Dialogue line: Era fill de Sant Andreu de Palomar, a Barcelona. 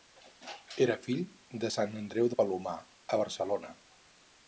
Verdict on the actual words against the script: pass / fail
pass